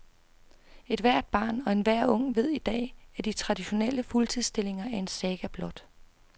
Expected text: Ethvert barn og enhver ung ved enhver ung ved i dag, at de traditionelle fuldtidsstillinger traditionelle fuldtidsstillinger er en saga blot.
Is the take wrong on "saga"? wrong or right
right